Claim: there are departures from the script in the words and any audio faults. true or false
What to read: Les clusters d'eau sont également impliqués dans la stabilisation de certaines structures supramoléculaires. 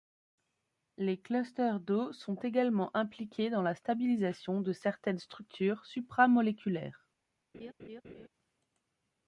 true